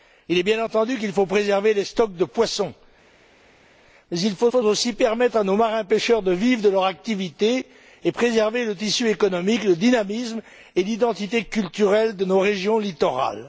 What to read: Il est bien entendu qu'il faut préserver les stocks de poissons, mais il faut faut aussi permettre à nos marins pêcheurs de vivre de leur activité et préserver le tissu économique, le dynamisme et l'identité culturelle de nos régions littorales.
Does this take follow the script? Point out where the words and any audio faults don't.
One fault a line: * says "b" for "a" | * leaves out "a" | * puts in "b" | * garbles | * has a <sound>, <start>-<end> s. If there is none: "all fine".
all fine